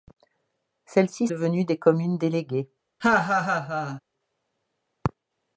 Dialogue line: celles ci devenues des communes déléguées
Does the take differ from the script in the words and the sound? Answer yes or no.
yes